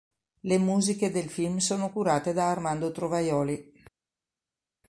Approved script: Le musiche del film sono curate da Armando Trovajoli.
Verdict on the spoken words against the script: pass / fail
pass